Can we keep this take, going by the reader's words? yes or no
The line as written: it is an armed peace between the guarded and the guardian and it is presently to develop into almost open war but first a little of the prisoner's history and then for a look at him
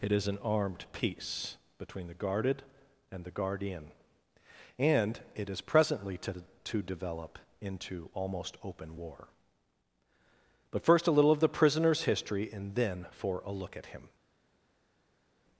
no